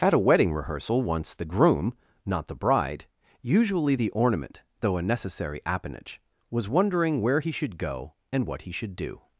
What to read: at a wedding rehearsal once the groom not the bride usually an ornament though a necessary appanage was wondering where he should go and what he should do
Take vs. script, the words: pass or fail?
fail